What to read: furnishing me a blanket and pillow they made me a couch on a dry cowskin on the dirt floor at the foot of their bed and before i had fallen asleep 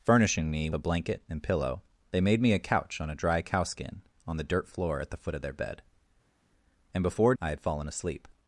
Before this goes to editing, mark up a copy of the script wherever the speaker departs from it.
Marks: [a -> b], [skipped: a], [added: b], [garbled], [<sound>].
furnishing me a blanket and pillow they made me a couch on a dry cowskin on the dirt floor at the foot of their bed and before i had fallen asleep